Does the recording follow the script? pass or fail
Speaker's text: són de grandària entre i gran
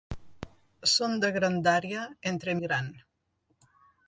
pass